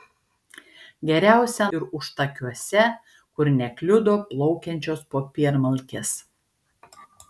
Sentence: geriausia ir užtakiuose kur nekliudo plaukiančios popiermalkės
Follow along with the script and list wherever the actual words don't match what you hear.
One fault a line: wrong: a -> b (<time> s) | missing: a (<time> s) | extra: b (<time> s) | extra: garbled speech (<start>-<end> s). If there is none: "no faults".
no faults